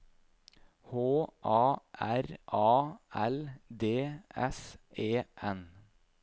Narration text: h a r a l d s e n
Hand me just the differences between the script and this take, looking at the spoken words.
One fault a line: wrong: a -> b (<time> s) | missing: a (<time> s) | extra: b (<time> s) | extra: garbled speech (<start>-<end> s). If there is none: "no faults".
no faults